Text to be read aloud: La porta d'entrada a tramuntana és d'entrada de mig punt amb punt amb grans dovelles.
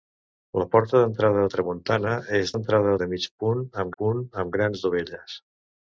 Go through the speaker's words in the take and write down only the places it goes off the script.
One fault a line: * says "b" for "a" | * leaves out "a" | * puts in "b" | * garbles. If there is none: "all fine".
all fine